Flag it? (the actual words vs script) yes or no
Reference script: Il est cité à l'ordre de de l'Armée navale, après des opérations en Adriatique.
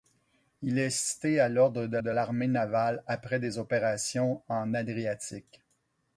no